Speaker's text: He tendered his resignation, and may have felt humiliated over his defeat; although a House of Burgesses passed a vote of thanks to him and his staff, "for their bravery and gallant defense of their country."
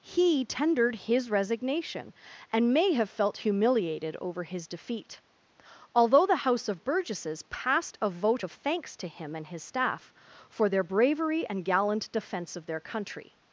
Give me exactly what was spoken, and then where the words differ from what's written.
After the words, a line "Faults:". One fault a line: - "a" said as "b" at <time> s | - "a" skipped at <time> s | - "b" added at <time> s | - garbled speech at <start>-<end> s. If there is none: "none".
He tendered his resignation, and may have felt humiliated over his defeat; although the House of Burgesses passed a vote of thanks to him and his staff, "for their bravery and gallant defense of their country."
Faults:
- "a" said as "the" at 6.2 s